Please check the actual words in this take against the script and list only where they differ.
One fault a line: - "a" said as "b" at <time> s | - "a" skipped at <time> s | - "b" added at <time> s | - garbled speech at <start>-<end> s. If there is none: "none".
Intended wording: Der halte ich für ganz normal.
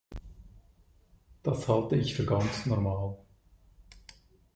- "Der" said as "Das" at 1.4 s